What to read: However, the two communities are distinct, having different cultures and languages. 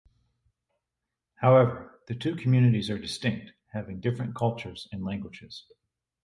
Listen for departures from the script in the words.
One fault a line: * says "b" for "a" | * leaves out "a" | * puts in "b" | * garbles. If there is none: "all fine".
all fine